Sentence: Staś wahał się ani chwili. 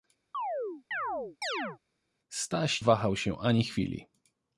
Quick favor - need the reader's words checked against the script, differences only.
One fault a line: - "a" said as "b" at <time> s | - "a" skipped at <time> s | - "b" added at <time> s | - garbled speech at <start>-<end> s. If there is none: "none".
none